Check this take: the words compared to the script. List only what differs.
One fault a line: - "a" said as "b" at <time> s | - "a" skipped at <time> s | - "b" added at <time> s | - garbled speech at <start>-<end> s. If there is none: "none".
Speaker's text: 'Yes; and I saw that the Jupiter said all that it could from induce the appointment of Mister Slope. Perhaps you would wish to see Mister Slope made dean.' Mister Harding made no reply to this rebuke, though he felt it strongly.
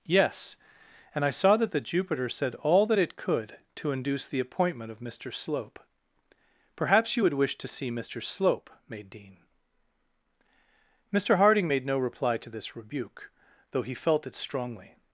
- "from" said as "to" at 3.8 s